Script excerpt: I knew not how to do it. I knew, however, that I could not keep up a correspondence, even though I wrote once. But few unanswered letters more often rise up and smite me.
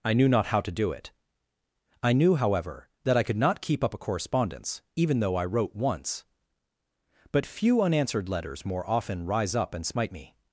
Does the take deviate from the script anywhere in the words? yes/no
no